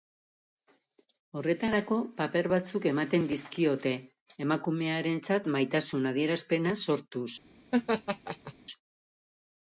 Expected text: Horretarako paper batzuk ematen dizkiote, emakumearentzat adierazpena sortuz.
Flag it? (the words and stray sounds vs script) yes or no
yes